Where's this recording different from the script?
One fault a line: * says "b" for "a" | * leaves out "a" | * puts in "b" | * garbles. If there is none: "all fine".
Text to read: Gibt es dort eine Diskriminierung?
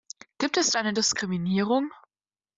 * leaves out "dort"